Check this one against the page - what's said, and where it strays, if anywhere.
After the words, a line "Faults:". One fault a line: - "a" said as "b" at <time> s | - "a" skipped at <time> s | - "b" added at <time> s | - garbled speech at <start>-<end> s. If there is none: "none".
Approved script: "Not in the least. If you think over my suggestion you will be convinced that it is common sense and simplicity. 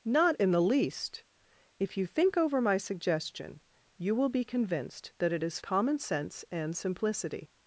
"Not in the least. If you think over my suggestion you will be convinced that it is common sense and simplicity.
Faults:
none